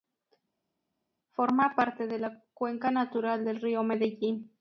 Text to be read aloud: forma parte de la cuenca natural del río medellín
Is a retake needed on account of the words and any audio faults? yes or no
no